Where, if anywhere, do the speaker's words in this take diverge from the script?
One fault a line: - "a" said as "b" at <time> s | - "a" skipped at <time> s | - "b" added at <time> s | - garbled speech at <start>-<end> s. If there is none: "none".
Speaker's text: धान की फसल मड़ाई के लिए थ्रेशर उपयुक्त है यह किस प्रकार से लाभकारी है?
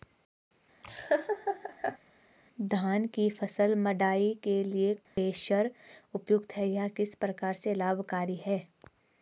none